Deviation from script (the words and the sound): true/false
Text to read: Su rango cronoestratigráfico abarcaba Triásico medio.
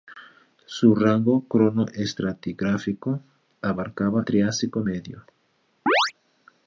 true